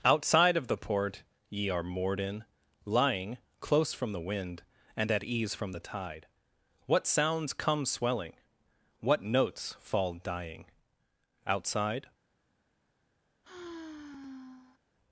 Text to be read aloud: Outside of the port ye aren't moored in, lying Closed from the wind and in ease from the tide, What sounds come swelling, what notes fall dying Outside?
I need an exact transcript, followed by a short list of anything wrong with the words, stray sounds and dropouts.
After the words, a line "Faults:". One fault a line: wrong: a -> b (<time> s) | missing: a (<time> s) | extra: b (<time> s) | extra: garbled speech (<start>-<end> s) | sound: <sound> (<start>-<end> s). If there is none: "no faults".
Outside of the port ye are moored in, lying Close from the wind and at ease from the tide, What sounds come swelling, what notes fall dying Outside?
Faults:
wrong: aren't -> are (1.7 s)
wrong: Closed -> Close (3.6 s)
wrong: in -> at (5.1 s)
sound: sigh (13.4-14.8 s)